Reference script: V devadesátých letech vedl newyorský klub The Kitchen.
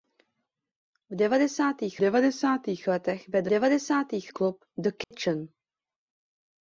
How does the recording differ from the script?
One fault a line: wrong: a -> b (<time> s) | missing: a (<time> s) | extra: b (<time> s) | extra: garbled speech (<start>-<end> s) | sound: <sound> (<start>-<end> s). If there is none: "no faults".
extra: devadesátých (2.0 s)
wrong: newyorský -> devadesátých (3.5 s)
sound: dropout (5.0-5.1 s)